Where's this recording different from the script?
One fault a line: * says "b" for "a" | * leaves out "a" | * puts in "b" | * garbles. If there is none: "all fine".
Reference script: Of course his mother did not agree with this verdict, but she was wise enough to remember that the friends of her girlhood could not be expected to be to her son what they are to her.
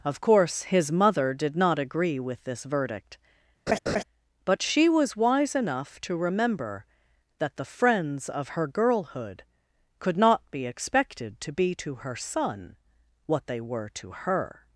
* says "were" for "are"